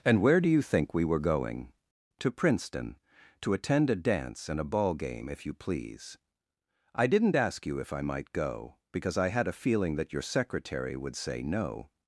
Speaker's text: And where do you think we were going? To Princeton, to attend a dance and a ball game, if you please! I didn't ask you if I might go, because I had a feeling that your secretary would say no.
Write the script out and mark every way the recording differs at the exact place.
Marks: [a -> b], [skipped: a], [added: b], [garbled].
And where do you think we were going? To Princeton, to attend a dance and a ball game, if you please! I didn't ask you if I might go, because I had a feeling that your secretary would say no.